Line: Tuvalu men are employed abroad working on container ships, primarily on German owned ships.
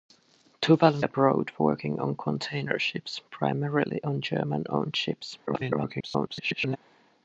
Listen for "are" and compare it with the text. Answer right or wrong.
wrong